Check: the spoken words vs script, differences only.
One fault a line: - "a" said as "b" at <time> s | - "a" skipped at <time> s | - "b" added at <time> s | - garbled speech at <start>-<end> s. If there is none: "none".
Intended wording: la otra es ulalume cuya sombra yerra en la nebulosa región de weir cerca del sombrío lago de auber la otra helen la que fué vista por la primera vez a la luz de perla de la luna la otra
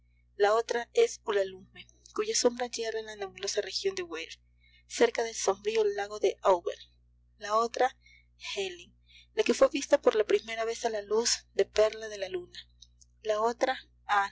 none